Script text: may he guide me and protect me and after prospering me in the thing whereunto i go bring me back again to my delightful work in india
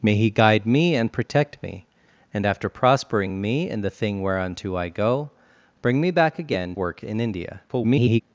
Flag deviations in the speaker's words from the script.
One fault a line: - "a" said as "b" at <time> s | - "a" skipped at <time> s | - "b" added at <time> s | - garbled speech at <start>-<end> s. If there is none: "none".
- "to my delightful" skipped at 6.8 s
- garbled speech at 7.7-8.2 s